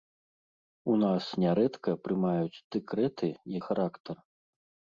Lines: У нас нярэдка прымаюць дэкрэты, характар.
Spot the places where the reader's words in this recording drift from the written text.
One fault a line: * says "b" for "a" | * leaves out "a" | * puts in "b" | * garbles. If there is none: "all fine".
all fine